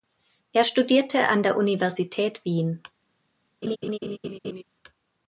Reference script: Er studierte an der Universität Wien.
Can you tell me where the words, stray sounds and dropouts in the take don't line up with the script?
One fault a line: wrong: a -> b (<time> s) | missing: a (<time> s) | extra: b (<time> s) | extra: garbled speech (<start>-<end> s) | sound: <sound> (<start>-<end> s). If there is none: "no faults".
sound: laugh (3.6-4.6 s)